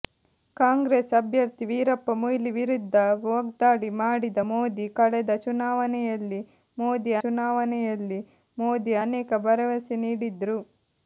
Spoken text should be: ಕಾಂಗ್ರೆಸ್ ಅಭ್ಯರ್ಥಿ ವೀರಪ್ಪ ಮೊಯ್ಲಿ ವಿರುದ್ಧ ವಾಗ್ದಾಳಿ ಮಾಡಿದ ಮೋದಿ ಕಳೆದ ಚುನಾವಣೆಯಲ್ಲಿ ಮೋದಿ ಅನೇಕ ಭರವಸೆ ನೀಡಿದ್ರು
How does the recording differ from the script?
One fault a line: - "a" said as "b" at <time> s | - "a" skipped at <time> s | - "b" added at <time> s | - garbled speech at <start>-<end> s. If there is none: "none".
- "ಚುನಾವಣೆಯಲ್ಲಿ ಮೋದಿ" added at 7.2 s